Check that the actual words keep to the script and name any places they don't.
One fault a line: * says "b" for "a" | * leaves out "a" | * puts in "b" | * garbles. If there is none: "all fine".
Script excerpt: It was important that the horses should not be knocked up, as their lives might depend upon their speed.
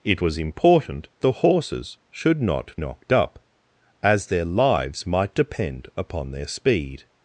* leaves out "that"
* leaves out "be"